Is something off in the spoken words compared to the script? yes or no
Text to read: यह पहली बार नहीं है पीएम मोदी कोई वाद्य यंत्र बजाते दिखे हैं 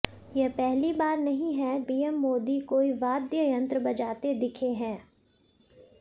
no